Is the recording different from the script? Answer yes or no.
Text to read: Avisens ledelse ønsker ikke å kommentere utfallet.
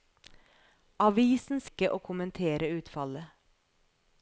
yes